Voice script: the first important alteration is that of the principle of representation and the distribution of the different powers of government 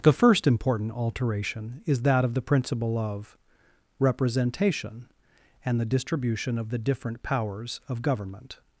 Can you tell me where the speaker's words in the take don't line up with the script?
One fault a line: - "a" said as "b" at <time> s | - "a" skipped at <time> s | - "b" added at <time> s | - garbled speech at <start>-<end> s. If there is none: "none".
none